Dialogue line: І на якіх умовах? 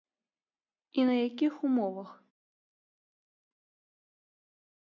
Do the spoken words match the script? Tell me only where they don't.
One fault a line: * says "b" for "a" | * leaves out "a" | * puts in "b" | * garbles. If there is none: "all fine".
all fine